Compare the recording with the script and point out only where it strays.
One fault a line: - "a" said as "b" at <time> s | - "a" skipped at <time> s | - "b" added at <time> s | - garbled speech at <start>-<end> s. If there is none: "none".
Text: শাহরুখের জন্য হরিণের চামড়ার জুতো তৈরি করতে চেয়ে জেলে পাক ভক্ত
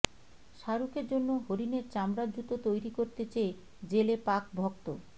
none